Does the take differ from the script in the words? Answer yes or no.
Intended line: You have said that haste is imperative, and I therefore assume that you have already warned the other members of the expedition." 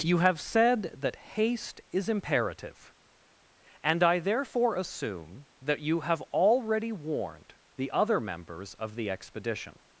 no